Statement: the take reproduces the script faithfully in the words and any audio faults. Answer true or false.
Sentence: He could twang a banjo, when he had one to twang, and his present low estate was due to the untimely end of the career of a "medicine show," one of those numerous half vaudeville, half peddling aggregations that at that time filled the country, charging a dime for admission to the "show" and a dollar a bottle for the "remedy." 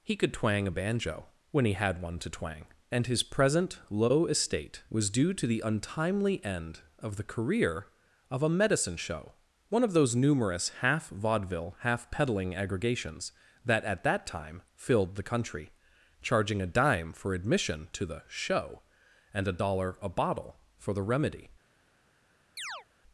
false